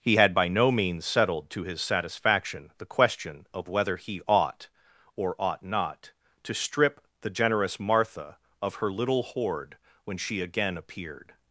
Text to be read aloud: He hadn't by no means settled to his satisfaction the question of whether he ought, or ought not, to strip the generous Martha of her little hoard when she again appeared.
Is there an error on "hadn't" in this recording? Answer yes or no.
yes